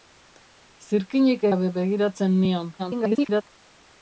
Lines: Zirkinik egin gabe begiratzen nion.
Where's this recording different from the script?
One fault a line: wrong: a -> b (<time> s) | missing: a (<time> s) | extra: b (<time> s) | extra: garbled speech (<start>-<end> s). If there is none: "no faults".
missing: egin (1.5 s)
extra: garbled speech (2.8-3.4 s)